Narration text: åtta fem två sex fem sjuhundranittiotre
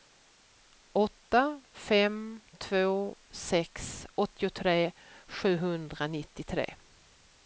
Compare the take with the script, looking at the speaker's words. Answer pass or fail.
fail